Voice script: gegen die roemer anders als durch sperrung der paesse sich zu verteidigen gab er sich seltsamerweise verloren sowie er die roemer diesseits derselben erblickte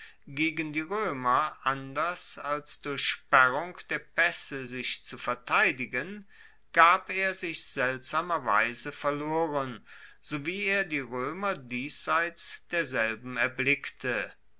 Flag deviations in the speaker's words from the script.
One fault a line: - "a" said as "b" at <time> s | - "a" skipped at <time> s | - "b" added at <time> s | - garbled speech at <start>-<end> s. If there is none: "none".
none